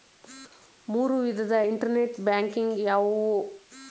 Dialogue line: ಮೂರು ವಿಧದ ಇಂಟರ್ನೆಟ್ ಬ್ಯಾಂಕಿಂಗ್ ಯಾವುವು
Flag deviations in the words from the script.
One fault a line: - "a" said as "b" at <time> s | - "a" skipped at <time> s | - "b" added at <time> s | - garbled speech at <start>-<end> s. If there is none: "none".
none